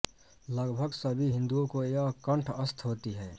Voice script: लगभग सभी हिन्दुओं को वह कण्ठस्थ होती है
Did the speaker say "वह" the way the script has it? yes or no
no